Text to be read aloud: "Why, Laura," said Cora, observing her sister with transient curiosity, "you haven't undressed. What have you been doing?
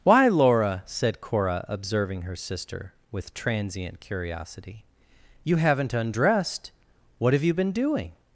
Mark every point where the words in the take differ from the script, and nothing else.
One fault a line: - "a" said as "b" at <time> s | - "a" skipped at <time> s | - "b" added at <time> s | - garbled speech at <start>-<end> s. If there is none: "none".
none